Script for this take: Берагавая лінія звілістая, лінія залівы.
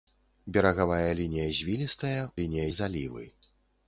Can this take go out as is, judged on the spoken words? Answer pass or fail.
pass